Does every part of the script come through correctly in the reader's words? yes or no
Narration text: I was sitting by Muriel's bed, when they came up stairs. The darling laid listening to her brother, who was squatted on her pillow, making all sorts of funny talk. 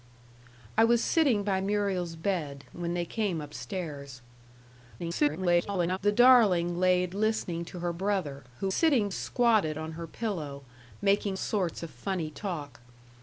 no